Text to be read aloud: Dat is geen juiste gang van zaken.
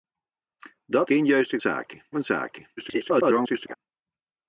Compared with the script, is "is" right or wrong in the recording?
wrong